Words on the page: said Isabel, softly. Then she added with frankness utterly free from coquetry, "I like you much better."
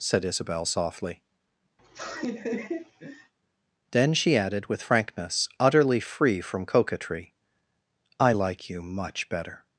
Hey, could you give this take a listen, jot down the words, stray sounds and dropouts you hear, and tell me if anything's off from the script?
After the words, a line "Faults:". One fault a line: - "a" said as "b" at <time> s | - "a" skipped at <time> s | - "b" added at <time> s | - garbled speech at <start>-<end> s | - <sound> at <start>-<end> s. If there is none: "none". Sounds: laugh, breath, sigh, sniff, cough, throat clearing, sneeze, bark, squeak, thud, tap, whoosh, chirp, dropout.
said Isabel, softly. Then she added with frankness utterly free from coquetry, "I like you much better."
Faults:
- laugh at 1.8-3.3 s